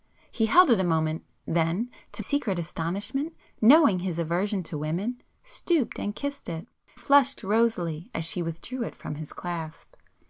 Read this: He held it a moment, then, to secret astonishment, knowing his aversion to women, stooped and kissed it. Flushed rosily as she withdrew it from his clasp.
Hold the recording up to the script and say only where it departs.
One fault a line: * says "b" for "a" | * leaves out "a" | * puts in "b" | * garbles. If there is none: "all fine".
all fine